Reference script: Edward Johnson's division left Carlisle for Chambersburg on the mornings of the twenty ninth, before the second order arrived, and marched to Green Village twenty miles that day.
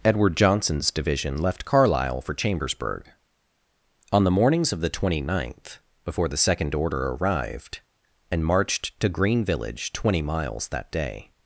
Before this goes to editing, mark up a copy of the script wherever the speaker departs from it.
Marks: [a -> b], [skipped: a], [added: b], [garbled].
Edward Johnson's division left Carlisle for Chambersburg on the mornings of the twenty ninth, before the second order arrived, and marched to Green Village twenty miles that day.